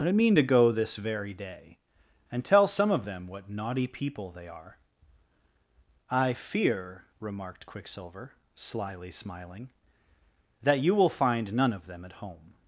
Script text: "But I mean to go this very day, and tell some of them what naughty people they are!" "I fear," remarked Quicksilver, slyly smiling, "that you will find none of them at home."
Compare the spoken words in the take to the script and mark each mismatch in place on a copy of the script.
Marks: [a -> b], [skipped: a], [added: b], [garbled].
"But I mean to go this very day, and tell some of them what naughty people they are!" "I fear," remarked Quicksilver, slyly smiling, "that you will find none of them at home."